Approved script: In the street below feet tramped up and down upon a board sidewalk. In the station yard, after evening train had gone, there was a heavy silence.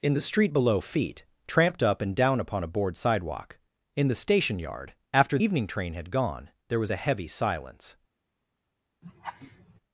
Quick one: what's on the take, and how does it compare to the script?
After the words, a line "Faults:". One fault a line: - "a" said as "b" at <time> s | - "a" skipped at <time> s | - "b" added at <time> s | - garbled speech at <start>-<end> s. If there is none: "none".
In the street below feet tramped up and down upon a board sidewalk. In the station yard, after evening train had gone, there was a heavy silence.
Faults:
none